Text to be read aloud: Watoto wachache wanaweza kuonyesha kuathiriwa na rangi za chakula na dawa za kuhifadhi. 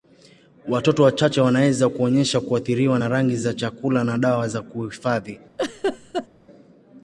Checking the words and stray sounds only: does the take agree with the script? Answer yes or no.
no